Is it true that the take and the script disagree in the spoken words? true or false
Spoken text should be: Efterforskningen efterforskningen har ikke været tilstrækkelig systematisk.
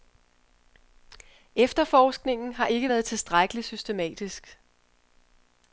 true